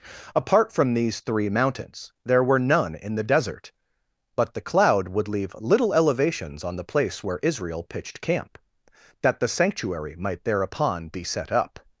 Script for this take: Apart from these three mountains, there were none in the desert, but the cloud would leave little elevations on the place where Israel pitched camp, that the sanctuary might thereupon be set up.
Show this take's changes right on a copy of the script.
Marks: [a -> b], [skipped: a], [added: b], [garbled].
Apart from these three mountains, there were none in the desert, but the cloud would leave little elevations on the place where Israel pitched camp, that the sanctuary might thereupon be set up.